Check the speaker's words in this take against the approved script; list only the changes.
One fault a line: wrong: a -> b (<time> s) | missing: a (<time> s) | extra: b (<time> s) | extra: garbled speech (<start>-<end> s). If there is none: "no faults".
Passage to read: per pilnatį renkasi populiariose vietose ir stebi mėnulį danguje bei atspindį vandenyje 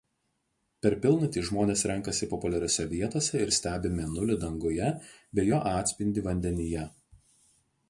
extra: žmonės (1.5 s)
extra: jo (5.5 s)